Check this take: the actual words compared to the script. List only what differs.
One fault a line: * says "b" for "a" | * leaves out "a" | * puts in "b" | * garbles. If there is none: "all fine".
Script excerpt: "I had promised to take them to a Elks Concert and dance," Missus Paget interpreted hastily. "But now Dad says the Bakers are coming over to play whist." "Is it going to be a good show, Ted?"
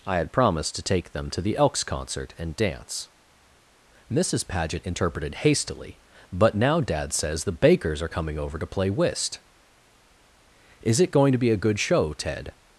* says "the" for "a"